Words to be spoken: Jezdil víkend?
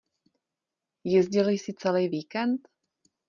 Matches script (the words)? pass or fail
fail